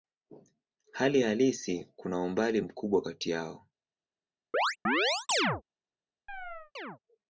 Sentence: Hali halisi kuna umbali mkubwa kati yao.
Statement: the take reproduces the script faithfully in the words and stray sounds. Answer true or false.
false